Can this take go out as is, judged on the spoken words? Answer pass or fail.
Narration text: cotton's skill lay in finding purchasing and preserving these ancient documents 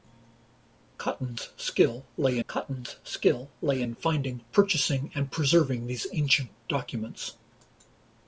fail